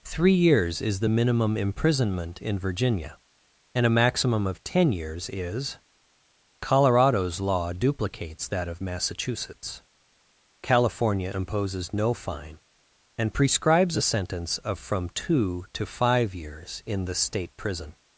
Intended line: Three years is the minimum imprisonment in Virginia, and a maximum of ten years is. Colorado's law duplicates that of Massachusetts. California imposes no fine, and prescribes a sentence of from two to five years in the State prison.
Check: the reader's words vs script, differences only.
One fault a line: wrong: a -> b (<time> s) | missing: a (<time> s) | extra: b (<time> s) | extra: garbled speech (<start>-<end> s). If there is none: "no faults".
no faults